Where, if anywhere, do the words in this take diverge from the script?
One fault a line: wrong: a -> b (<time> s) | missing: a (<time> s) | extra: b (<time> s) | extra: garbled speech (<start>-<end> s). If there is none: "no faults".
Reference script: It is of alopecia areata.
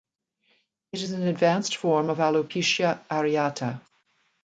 extra: an advanced form (1.1 s)